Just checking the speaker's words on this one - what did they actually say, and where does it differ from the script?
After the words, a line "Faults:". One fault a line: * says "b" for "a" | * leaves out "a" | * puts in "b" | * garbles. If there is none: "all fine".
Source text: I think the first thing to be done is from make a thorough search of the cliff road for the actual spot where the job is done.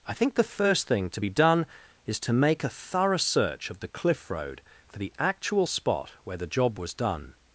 I think the first thing to be done is to make a thorough search of the cliff road for the actual spot where the job was done.
Faults:
* says "to" for "from"
* says "was" for "is"